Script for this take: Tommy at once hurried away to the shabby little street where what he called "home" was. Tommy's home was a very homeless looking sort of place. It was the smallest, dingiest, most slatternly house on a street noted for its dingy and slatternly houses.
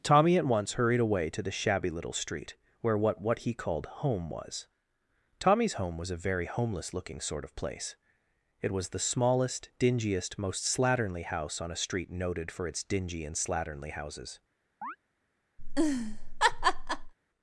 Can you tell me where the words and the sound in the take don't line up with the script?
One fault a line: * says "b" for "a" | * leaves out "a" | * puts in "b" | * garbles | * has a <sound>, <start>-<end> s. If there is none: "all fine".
* puts in "what"
* has a chirp, 14.8-15.0 s
* has a laugh, 15.6-17.1 s